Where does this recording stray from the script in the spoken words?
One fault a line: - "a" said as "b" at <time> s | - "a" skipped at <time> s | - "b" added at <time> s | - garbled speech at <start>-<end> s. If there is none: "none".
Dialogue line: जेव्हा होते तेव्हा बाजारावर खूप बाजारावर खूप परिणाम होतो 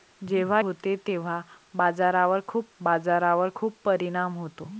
none